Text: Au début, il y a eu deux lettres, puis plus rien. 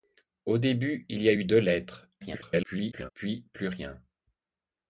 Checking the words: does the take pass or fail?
fail